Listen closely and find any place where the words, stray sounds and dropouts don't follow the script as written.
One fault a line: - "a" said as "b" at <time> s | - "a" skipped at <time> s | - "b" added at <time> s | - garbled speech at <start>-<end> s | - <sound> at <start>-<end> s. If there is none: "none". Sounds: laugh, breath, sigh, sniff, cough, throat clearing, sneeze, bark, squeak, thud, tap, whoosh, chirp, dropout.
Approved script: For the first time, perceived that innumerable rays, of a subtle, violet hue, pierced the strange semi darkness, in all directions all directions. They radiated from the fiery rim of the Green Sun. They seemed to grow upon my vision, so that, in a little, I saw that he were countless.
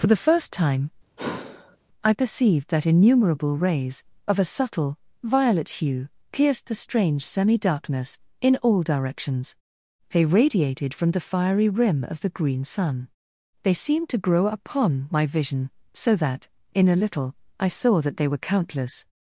- sigh at 1.2-1.8 s
- "I" added at 2.0 s
- "all directions" skipped at 9.5 s
- "he" said as "they" at 18.2 s